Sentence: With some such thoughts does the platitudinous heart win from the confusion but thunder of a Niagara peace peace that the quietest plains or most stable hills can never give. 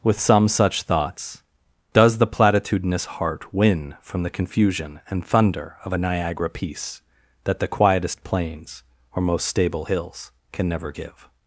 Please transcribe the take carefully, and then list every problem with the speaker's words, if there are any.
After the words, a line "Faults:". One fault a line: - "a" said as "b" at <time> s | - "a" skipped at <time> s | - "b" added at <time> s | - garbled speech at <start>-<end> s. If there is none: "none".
With some such thoughts does the platitudinous heart win from the confusion and thunder of a Niagara peace that the quietest plains or most stable hills can never give.
Faults:
- "but" said as "and" at 5.1 s
- "peace" skipped at 7.0 s